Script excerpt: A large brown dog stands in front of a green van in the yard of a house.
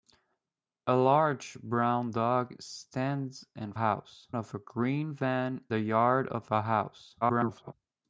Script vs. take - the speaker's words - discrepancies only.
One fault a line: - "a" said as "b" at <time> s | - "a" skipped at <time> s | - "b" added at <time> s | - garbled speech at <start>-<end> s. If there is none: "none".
- "front" said as "house" at 3.7 s
- "in" skipped at 5.6 s
- garbled speech at 7.2-7.7 s